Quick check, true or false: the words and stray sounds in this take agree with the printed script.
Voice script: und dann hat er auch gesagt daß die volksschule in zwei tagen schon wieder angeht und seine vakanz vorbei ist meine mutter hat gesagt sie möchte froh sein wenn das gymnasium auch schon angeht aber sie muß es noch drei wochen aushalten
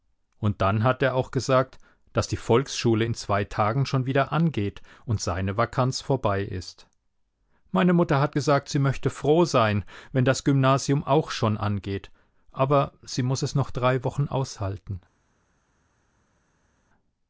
true